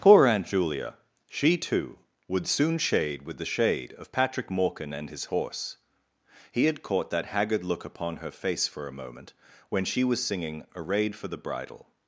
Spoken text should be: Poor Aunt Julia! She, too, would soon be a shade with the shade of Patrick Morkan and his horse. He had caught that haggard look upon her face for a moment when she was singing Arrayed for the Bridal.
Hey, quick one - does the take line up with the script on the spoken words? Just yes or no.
no